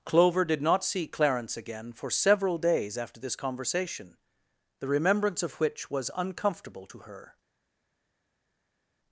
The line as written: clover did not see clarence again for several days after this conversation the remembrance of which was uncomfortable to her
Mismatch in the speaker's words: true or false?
false